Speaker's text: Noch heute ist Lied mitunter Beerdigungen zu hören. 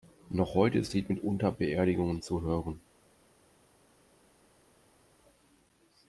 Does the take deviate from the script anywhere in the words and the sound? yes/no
no